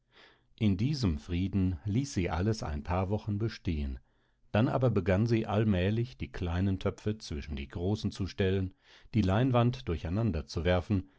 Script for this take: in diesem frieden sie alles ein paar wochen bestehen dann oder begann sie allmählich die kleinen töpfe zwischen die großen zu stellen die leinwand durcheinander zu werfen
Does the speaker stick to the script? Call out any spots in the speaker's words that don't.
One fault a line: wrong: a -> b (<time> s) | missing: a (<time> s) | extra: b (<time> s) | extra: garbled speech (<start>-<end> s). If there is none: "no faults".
extra: ließ (1.9 s)
wrong: oder -> aber (4.7 s)